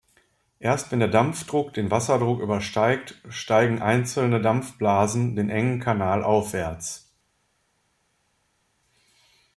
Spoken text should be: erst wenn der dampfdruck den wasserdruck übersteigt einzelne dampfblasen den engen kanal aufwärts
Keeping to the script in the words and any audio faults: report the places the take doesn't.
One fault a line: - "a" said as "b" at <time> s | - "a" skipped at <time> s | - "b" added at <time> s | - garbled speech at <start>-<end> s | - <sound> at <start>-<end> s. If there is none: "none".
- "steigen" added at 3.3 s